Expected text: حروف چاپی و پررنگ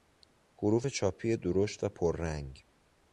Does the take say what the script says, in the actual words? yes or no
no